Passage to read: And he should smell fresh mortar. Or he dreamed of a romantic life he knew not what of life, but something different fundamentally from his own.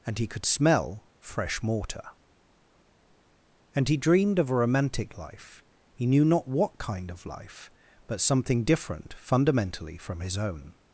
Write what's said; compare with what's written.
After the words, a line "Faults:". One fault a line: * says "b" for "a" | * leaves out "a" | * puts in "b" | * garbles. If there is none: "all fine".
And he could smell fresh mortar. And he dreamed of a romantic life he knew not what kind of life, but something different fundamentally from his own.
Faults:
* says "could" for "should"
* says "And" for "Or"
* puts in "kind"